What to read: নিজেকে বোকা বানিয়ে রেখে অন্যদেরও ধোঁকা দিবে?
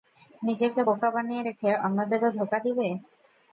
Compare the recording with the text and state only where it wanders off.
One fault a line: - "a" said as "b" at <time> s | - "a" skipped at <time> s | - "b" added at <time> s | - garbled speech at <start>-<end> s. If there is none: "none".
none